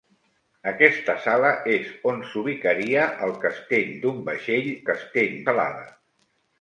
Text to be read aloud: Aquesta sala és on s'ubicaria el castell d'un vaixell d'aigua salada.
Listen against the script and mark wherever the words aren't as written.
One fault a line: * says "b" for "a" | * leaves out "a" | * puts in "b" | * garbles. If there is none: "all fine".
* says "castell" for "d'aigua"